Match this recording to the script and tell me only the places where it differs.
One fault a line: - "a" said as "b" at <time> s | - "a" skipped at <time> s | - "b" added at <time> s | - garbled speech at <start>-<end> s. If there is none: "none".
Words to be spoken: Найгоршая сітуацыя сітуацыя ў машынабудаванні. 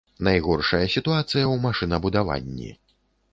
- "сітуацыя" skipped at 1.4 s